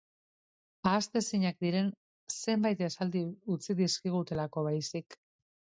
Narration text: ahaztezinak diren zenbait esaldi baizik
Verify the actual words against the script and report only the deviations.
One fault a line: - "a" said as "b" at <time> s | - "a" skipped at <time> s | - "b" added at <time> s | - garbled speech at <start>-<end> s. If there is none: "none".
- "utzi dizkigutelako" added at 3.6 s